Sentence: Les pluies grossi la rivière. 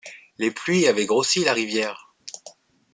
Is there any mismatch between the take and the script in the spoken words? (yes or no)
yes